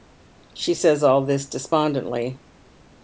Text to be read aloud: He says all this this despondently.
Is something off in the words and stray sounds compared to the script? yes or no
yes